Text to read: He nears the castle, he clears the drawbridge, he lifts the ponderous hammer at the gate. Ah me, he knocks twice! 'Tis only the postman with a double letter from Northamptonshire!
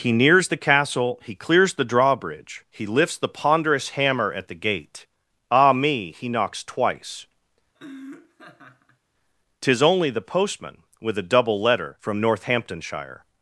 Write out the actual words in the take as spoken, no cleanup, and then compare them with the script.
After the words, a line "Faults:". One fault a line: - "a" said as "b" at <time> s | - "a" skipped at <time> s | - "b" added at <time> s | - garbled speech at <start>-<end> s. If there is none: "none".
He nears the castle, he clears the drawbridge, he lifts the ponderous hammer at the gate. Ah me, he knocks twice! 'Tis only the postman with a double letter from Northamptonshire!
Faults:
none